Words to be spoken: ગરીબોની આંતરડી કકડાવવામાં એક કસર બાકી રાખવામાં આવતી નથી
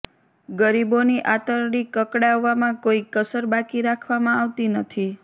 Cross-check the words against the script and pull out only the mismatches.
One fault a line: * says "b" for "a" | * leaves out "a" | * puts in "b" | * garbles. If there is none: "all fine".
* says "કોઈ" for "એક"